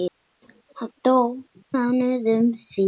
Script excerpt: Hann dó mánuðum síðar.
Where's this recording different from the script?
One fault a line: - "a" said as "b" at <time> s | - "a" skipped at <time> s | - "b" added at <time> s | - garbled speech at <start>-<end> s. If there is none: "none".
none